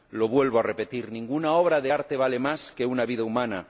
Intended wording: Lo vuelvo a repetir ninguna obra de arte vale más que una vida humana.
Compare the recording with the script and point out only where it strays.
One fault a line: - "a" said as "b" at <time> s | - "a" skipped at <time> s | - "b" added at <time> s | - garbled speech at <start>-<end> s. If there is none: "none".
none